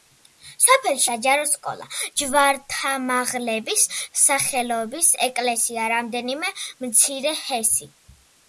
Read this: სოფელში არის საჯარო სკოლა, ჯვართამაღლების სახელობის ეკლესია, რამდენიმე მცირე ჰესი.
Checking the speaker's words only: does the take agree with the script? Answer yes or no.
no